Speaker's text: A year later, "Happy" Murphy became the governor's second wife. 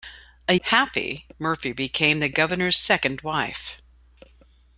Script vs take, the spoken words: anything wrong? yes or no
yes